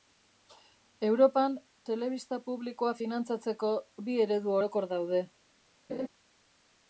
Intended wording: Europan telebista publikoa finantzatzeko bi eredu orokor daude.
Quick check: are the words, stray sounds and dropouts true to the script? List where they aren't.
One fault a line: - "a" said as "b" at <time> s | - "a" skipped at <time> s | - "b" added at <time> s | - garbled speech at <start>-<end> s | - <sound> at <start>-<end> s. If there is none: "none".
- laugh at 5.9-6.1 s